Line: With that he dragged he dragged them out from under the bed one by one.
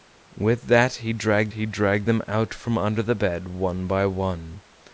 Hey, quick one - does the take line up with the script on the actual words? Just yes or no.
yes